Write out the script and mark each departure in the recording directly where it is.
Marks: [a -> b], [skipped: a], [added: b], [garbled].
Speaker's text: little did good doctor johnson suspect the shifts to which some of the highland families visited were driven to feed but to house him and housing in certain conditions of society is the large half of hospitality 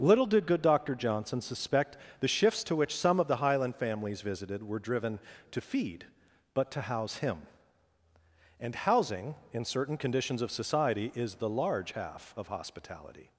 little did good doctor johnson suspect the shifts to which some of the highland families visited were driven to feed but to house him and housing in certain conditions of society is the large half of hospitality